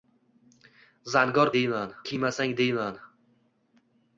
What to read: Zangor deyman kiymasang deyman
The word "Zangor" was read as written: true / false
true